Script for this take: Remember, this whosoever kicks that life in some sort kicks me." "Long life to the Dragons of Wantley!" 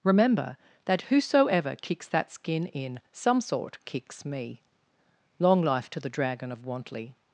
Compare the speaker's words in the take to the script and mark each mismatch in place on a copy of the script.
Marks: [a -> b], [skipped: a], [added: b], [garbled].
Remember, [this -> that] whosoever kicks that [life -> skin] in some sort kicks me." "Long life to the [Dragons -> Dragon] of Wantley!"